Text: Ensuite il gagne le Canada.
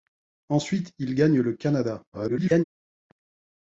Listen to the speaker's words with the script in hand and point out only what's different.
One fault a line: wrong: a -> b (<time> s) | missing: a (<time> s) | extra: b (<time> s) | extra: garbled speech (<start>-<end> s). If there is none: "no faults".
extra: garbled speech (2.1-2.6 s)